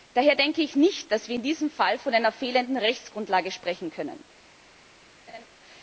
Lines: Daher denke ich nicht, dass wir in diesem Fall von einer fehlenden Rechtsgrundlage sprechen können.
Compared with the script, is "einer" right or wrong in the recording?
right